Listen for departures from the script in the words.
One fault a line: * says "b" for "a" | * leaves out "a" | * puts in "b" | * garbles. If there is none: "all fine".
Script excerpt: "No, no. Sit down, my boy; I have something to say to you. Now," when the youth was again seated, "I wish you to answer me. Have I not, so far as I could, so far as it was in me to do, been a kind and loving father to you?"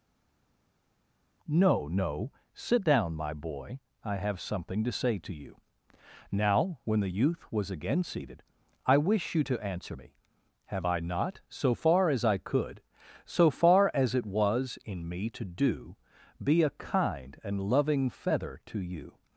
* says "be" for "been"
* says "feather" for "father"